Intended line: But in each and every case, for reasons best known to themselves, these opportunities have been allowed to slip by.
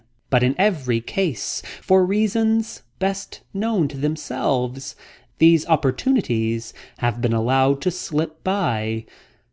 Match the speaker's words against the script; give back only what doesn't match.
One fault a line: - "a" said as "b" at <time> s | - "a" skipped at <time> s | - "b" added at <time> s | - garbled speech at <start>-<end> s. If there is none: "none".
- "each and" skipped at 0.6 s